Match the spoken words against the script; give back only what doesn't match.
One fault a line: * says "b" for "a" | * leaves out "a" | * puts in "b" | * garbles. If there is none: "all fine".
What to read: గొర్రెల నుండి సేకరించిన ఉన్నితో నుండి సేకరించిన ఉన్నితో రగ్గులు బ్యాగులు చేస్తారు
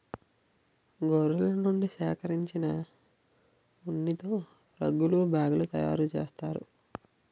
* leaves out "నుండి సేకరించిన ఉన్నితో"
* puts in "తయారు"